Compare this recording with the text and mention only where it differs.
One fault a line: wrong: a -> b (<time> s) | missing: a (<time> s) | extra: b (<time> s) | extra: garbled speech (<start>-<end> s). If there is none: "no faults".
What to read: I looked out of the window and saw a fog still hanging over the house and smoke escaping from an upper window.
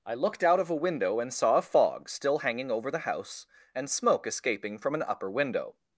wrong: the -> a (0.7 s)